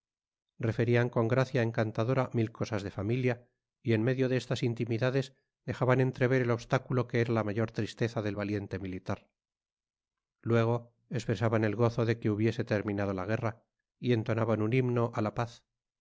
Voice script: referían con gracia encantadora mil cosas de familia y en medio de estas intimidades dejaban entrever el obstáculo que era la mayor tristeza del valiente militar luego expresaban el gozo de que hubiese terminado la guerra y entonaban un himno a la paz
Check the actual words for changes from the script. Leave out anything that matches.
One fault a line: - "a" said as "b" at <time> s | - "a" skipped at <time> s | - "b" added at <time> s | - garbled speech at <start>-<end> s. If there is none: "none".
none